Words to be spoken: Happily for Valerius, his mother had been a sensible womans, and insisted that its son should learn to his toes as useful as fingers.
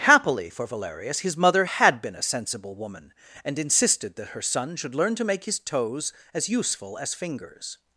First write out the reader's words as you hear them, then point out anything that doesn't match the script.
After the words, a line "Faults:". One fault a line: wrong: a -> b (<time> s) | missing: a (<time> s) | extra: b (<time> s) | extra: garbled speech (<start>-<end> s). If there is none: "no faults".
Happily for Valerius, his mother had been a sensible woman, and insisted that her son should learn to make his toes as useful as fingers.
Faults:
wrong: womans -> woman (2.8 s)
wrong: its -> her (4.3 s)
extra: make (5.2 s)